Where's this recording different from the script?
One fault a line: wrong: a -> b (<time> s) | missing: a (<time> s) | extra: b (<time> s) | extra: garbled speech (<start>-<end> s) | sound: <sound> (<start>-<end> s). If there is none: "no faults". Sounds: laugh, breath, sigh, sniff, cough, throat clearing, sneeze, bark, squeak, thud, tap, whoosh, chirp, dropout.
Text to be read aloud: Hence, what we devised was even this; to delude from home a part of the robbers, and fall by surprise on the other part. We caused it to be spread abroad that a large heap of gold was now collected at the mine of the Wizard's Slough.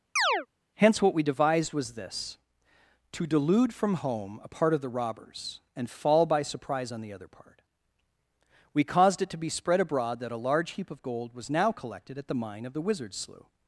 sound: chirp (0.2-0.5 s)
missing: even (1.9 s)